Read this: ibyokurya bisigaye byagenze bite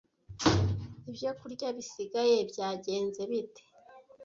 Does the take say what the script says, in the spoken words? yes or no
yes